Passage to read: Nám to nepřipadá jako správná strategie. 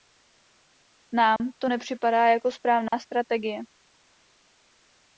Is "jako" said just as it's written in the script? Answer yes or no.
yes